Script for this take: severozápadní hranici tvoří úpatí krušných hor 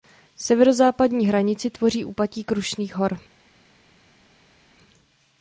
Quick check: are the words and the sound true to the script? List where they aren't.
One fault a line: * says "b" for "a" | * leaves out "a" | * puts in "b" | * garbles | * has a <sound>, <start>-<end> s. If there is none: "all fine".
all fine